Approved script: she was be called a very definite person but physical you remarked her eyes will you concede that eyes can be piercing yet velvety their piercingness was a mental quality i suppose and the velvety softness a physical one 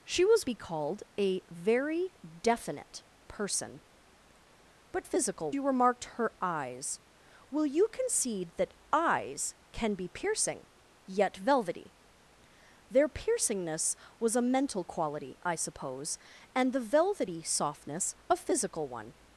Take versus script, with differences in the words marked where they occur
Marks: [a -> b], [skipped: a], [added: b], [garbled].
she was be called a very definite person but physical you remarked her eyes will you concede that eyes can be piercing yet velvety their piercingness was a mental quality i suppose and the velvety softness a physical one